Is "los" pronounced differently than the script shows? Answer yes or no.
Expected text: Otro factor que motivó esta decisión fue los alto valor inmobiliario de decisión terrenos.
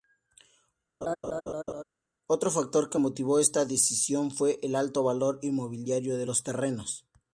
yes